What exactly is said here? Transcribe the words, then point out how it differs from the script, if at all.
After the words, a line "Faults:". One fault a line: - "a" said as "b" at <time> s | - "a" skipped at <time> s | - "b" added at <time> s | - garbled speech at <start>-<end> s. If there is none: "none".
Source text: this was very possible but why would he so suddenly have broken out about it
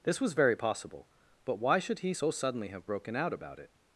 this was very possible but why should he so suddenly have broken out about it
Faults:
- "would" said as "should" at 1.8 s